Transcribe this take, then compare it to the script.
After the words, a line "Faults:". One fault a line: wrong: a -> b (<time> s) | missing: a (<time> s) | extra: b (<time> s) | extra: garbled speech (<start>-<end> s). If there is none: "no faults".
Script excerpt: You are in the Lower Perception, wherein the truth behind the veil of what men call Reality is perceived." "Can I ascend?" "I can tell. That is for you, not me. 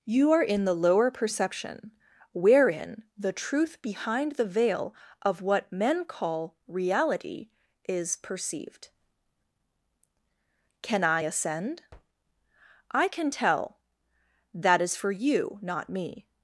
You are in the Lower Perception, wherein the truth behind the veil of what men call Reality is perceived." "Can I ascend?" "I can tell. That is for you, not me.
Faults:
no faults